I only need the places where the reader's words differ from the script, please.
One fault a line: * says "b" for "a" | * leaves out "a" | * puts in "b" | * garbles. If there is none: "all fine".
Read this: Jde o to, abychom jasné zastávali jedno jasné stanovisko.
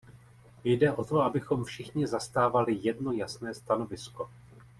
* says "všichni" for "jasné"